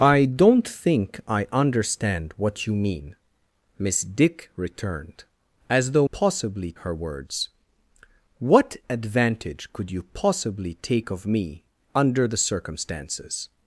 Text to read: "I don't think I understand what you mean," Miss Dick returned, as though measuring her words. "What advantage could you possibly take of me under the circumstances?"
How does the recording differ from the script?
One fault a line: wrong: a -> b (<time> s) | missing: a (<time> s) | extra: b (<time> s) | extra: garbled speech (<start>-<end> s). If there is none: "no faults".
wrong: measuring -> possibly (6.1 s)